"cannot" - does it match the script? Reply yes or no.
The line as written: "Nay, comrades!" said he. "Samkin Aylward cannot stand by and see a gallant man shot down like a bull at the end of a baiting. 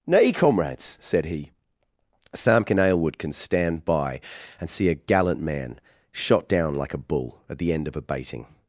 no